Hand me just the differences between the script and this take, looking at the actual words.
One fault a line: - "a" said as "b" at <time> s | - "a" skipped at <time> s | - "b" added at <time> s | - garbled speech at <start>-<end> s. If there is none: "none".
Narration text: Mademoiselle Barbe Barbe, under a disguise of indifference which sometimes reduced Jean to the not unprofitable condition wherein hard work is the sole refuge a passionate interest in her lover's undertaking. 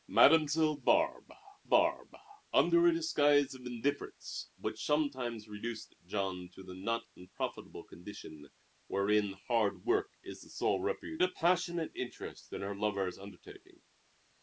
none